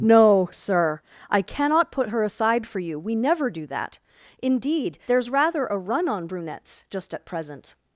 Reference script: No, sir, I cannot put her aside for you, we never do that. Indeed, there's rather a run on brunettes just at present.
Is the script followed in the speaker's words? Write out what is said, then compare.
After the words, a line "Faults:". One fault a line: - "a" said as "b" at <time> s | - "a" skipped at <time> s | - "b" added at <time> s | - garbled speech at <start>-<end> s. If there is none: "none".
No, sir, I cannot put her aside for you, we never do that. Indeed, there's rather a run on brunettes just at present.
Faults:
none